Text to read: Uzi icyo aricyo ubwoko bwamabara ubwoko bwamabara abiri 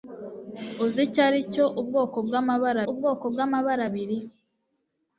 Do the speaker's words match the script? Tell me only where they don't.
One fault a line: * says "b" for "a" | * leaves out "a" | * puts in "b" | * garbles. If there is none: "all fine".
all fine